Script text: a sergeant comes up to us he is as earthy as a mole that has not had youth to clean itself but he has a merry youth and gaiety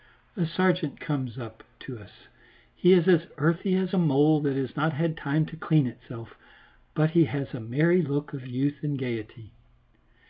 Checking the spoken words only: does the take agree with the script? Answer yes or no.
no